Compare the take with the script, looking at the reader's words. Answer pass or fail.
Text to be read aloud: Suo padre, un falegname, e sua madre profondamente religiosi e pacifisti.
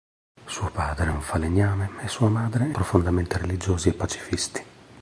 pass